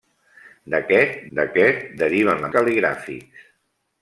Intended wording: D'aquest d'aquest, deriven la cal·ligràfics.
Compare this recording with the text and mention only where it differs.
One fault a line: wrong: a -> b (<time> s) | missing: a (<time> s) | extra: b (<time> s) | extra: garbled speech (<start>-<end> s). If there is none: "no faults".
no faults